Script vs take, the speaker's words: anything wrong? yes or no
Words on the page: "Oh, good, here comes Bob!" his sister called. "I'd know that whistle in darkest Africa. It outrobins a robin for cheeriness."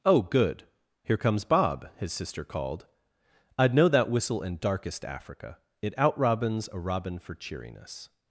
no